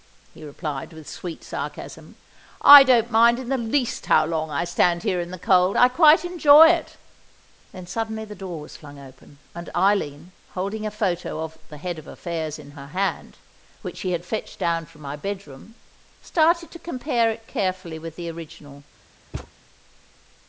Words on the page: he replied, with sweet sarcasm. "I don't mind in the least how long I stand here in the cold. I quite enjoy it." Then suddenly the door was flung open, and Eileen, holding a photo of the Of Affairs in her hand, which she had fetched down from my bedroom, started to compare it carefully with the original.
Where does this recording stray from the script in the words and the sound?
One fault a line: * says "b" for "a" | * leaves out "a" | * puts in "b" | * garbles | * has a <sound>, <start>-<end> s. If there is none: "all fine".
* puts in "Head"
* has a thud, 19.3-19.5 s